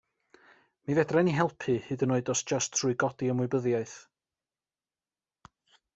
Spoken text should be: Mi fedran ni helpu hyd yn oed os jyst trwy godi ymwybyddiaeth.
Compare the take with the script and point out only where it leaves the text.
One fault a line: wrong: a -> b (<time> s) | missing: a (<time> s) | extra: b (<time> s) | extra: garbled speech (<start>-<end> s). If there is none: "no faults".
no faults